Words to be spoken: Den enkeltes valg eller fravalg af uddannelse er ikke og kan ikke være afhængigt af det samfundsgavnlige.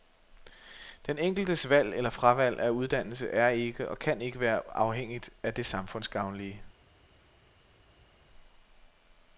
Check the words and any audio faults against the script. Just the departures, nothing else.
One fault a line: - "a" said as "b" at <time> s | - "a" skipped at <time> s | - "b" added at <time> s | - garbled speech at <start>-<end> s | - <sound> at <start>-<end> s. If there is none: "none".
none